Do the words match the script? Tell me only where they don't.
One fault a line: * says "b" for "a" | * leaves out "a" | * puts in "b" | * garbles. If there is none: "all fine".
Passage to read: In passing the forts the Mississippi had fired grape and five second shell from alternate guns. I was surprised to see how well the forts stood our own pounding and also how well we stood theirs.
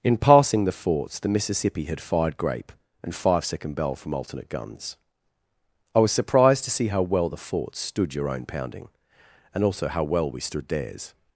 * says "bell" for "shell"
* says "your" for "our"